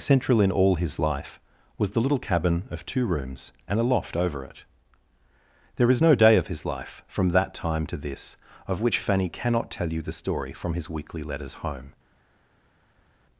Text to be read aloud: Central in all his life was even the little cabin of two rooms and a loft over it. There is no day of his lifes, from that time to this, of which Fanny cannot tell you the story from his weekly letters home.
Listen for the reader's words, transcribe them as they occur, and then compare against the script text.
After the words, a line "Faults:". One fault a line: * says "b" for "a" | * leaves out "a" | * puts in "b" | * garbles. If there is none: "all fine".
Central in all his life was the little cabin of two rooms and a loft over it. There is no day of his life, from that time to this, of which Fanny cannot tell you the story from his weekly letters home.
Faults:
* leaves out "even"
* says "life" for "lifes"